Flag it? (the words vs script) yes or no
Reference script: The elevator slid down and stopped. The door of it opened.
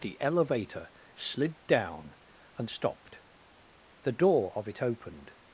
no